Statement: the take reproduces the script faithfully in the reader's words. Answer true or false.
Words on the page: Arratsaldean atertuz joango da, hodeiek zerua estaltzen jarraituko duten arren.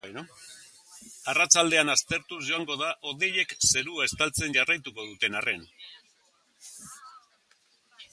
true